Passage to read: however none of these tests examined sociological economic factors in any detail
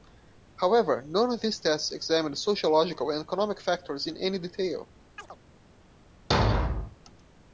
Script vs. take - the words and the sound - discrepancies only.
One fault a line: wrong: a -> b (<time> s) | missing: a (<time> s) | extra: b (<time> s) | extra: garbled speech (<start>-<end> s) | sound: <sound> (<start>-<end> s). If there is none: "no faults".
extra: and (3.1 s)
sound: chirp (5.2-5.4 s)
sound: thud (6.3-7.0 s)